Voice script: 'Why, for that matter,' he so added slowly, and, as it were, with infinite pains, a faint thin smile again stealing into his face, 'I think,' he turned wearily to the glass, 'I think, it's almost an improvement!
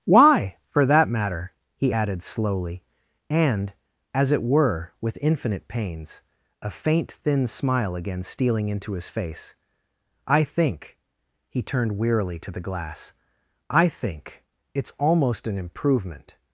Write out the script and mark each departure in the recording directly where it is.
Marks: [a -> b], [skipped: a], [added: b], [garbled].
'Why, for that matter,' he [skipped: so] added slowly, and, as it were, with infinite pains, a faint thin smile again stealing into his face, 'I think,' he turned wearily to the glass, 'I think, it's almost an improvement!